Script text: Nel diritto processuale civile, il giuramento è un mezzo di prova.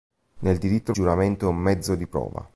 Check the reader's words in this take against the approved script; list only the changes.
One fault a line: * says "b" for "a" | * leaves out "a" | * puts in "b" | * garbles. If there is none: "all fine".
* leaves out "processuale civile il"